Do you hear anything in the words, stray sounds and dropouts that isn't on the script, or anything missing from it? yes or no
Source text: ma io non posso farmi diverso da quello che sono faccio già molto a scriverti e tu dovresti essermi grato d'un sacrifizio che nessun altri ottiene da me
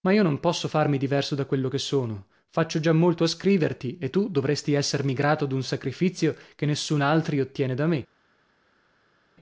no